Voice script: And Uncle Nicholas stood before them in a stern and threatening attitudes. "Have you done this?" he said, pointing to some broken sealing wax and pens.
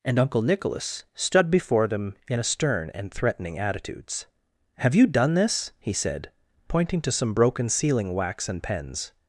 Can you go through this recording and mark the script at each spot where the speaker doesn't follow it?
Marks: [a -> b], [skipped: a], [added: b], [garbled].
And Uncle Nicholas stood before them in a stern and threatening attitudes. "Have you done this?" he said, pointing to some broken sealing wax and pens.